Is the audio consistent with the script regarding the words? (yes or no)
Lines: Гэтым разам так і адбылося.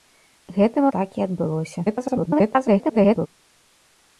no